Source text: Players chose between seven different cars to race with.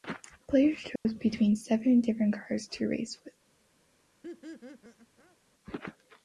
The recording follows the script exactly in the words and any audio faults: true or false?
false